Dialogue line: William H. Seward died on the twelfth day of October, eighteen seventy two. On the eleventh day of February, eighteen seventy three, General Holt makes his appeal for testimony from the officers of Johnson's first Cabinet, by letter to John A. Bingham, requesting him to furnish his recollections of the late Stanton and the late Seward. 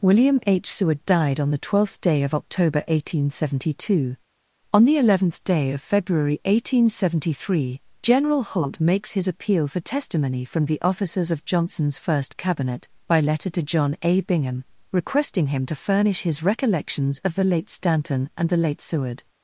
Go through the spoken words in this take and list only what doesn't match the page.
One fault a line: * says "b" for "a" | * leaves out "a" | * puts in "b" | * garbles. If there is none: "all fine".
all fine